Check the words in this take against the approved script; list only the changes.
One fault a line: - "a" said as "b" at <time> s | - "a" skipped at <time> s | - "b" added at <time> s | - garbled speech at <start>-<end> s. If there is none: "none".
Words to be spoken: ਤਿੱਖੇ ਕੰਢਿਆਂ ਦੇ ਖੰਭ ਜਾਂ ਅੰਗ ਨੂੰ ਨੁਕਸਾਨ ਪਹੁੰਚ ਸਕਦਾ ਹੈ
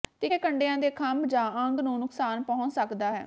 none